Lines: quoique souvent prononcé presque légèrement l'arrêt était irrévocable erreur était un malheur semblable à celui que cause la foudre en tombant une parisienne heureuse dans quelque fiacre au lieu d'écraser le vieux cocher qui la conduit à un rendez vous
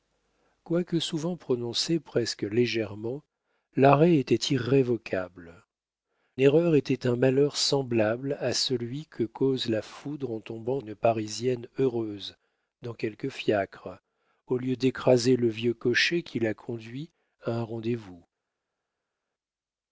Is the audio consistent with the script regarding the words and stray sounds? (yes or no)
yes